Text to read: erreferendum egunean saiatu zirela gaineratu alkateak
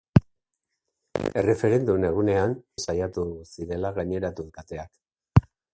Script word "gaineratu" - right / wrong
right